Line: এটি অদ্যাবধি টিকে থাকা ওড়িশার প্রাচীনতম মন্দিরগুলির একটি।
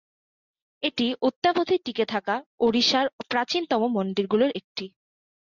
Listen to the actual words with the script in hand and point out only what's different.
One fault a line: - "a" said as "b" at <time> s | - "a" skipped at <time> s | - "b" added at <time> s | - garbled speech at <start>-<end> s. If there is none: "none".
none